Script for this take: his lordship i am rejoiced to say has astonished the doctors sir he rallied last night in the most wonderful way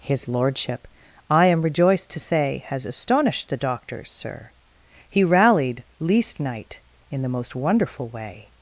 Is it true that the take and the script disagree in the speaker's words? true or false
true